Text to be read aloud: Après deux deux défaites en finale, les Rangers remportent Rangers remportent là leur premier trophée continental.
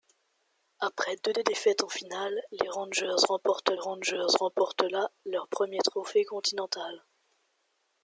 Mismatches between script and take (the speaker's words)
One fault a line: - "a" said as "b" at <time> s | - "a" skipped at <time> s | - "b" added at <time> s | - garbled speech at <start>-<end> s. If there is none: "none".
none